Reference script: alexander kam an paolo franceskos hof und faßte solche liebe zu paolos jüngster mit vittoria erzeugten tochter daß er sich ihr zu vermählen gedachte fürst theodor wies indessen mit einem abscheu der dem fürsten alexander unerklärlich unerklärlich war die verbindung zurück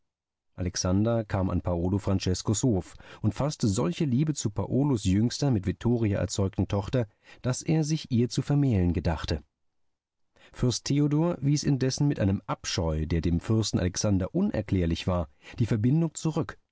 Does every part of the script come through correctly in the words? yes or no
no